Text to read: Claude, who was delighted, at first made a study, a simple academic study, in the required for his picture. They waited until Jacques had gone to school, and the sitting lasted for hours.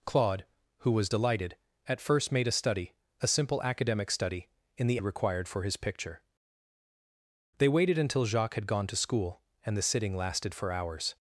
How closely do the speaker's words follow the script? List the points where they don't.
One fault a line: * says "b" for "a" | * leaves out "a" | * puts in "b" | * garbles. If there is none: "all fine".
all fine